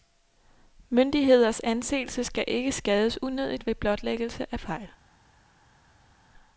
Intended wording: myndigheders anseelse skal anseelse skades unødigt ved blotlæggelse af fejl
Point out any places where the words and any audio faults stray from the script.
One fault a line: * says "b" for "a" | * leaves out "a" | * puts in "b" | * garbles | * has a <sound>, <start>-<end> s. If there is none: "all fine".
* says "ikke" for "anseelse"